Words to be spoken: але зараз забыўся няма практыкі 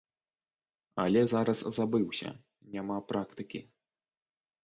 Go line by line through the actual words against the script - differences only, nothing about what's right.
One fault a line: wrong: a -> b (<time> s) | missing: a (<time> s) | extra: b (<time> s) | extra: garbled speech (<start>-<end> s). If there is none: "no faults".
no faults